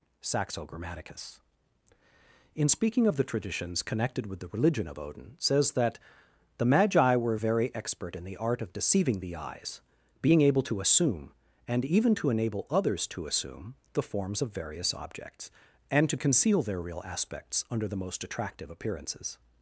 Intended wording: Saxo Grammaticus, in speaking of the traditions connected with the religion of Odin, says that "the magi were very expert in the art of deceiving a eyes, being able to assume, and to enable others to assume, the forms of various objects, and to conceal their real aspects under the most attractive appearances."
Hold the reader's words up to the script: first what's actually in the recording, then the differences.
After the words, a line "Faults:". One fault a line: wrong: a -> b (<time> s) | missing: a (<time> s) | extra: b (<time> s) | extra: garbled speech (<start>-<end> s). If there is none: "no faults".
Saxo Grammaticus, in speaking of the traditions connected with the religion of Odin, says that "the magi were very expert in the art of deceiving the eyes, being able to assume, and even to enable others to assume, the forms of various objects, and to conceal their real aspects under the most attractive appearances."
Faults:
wrong: a -> the (9.2 s)
extra: even (11.8 s)